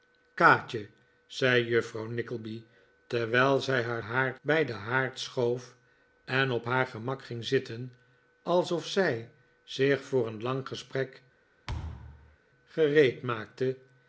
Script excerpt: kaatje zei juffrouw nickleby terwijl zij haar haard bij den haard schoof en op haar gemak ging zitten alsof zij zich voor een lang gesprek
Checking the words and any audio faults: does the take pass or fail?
fail